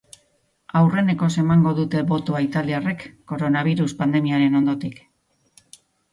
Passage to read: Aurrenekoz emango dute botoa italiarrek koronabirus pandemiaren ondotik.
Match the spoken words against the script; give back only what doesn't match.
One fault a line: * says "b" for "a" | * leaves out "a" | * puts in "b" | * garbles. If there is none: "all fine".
all fine